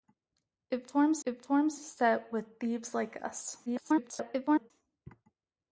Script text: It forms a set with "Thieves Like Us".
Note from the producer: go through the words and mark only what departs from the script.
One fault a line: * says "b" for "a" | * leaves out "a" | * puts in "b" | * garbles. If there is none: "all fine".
* puts in "it forms"
* garbles